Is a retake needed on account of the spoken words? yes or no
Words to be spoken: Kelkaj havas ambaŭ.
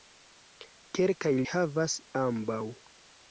no